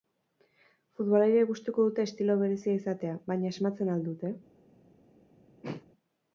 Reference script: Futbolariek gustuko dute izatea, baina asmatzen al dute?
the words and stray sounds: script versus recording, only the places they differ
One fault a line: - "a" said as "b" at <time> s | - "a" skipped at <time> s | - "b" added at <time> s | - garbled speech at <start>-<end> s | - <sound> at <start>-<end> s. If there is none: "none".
- "estilo berezia" added at 2.1 s
- throat clearing at 5.6-5.8 s